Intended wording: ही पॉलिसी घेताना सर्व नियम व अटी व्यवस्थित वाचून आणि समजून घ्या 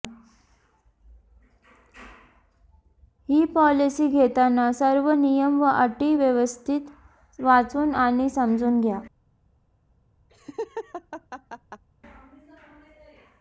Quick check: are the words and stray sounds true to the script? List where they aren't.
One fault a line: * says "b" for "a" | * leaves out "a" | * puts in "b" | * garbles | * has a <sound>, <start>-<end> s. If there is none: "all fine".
* has a laugh, 10.3-11.8 s